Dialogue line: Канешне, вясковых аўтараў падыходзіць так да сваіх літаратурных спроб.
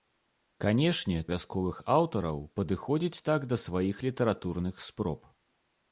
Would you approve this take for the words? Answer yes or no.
yes